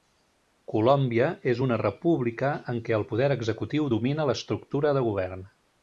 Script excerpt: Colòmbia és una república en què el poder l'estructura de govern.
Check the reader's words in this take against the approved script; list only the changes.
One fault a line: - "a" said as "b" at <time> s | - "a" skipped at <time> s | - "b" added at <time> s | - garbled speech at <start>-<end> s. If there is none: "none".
- "executiu domina" added at 3.4 s